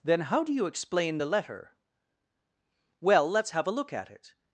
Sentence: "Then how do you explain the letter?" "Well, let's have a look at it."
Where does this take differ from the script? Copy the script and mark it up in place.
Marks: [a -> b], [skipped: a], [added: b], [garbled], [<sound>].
"Then how do you explain the letter?" "Well, let's have a look at it."